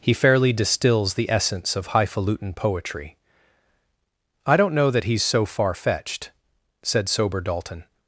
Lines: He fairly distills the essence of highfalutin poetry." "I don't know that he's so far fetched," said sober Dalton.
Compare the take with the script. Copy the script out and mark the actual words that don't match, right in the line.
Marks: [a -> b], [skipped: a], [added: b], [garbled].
He fairly distills the essence of highfalutin poetry." "I don't know that he's so far fetched," said sober Dalton.